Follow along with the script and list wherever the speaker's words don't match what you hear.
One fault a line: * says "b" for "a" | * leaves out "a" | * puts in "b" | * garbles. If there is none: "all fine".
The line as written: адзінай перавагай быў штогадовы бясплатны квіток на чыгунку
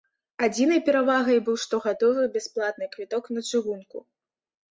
all fine